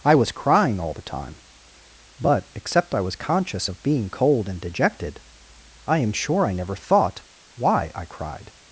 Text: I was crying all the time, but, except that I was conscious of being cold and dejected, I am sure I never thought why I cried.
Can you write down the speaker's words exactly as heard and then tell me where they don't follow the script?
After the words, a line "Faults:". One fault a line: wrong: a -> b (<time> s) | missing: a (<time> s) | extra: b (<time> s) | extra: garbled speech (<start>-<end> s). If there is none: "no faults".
I was crying all the time, but, except I was conscious of being cold and dejected, I am sure I never thought why I cried.
Faults:
missing: that (3.0 s)